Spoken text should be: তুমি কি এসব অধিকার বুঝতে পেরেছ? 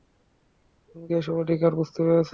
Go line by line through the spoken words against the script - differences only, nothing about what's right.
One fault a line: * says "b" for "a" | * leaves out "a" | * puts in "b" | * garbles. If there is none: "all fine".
all fine